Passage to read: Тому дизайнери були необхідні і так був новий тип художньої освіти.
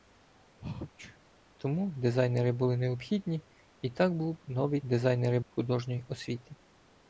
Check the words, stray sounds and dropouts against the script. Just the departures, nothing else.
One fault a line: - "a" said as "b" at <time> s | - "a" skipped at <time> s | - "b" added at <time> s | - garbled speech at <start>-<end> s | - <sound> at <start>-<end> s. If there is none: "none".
- sneeze at 0.6-1.2 s
- "тип" said as "дизайнери" at 4.8 s